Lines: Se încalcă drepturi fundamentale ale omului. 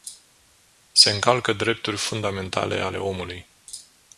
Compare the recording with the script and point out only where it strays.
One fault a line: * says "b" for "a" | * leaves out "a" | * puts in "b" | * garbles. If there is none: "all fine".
all fine